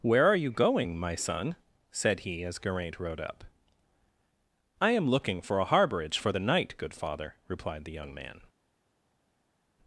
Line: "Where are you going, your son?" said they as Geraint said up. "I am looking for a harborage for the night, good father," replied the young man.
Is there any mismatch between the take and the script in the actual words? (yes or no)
yes